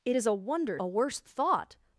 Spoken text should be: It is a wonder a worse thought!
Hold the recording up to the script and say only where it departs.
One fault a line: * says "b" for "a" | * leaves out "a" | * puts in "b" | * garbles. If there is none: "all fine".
all fine